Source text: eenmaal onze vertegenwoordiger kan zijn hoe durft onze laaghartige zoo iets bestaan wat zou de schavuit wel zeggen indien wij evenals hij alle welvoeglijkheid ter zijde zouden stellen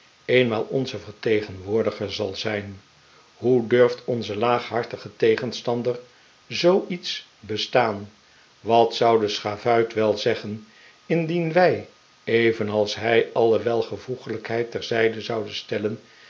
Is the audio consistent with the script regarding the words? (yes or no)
no